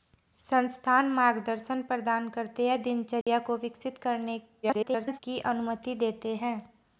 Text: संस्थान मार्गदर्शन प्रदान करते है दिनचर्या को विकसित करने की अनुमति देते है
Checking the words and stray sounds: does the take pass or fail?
fail